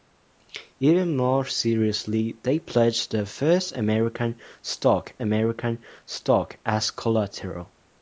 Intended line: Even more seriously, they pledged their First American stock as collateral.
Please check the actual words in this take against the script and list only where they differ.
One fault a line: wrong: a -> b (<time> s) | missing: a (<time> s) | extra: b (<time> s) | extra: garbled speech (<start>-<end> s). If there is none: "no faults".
extra: American stock (5.2 s)